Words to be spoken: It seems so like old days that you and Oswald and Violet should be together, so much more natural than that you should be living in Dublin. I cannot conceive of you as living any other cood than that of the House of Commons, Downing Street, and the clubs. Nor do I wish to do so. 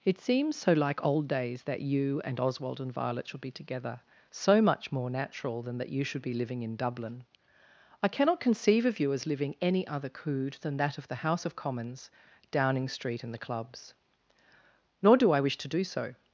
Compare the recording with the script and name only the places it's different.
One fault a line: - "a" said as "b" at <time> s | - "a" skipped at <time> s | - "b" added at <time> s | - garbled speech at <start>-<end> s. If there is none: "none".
none